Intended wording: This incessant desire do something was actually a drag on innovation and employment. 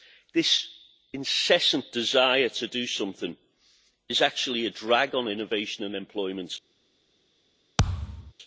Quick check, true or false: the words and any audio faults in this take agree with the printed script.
false